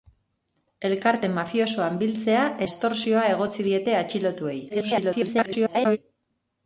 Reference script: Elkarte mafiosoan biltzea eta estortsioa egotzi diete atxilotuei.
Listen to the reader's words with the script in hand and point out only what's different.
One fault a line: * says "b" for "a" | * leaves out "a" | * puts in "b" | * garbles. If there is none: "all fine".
* leaves out "eta"
* garbles